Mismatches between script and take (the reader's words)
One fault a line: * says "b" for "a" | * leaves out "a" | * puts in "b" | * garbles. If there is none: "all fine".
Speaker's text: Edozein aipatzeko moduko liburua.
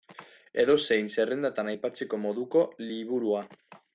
* puts in "zerrendatan"